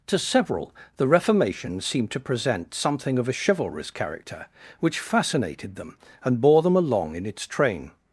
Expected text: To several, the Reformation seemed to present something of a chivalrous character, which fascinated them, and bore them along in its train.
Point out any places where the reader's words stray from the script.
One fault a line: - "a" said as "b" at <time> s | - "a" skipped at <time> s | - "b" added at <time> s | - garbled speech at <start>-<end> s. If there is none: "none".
none